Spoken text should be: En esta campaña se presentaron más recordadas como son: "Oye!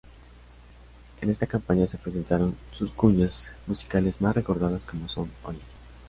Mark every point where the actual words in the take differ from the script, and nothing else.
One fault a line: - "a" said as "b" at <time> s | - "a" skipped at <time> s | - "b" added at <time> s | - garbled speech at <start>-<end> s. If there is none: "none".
- "sus cuñas musicales" added at 2.7 s